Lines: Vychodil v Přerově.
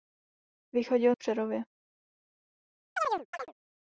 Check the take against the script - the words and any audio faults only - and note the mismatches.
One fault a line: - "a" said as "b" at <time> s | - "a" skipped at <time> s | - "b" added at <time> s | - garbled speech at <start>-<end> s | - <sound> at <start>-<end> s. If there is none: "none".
- chirp at 3.0-3.5 s